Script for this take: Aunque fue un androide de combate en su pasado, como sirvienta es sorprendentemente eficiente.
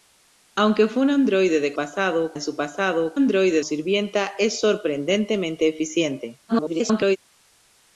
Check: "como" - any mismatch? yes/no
yes